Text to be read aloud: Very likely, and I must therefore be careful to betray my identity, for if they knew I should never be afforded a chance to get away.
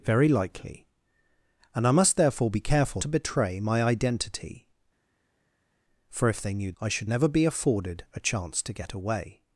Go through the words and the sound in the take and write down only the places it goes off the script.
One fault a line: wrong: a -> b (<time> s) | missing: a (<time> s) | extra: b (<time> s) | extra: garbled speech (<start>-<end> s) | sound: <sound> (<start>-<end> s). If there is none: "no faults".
no faults